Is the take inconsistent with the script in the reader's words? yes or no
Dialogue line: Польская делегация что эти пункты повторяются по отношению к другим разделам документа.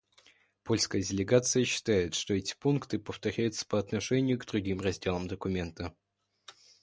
yes